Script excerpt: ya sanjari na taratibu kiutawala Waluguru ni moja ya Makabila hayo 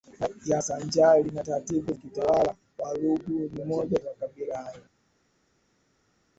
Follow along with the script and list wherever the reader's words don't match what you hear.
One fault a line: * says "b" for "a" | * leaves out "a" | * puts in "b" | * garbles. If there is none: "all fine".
all fine